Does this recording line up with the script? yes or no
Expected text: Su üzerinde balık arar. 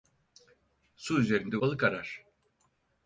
yes